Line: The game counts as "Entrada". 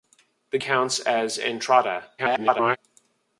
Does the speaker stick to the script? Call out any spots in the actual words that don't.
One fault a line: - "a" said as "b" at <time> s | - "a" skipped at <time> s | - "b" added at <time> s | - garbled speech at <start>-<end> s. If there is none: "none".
- "game" skipped at 0.6 s
- garbled speech at 2.2-2.8 s